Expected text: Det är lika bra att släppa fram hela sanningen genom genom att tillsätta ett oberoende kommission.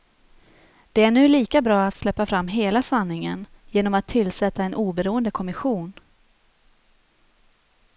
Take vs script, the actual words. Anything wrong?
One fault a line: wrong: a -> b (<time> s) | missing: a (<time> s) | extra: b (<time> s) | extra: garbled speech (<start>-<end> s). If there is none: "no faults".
extra: nu (1.1 s)
missing: genom (3.9 s)
wrong: ett -> en (4.6 s)